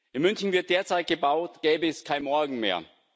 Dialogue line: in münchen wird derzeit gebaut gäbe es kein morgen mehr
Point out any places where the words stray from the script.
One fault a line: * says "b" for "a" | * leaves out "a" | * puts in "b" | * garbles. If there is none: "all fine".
all fine